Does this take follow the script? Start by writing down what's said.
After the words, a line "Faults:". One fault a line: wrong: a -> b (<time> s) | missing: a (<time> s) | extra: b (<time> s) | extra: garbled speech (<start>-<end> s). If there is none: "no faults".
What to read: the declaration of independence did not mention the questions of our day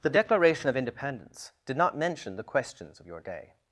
the declaration of independence did not mention the questions of your day
Faults:
wrong: our -> your (3.1 s)